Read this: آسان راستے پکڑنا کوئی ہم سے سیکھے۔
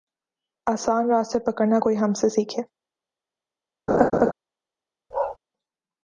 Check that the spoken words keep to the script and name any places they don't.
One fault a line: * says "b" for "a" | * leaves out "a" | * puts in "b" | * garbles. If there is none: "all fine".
all fine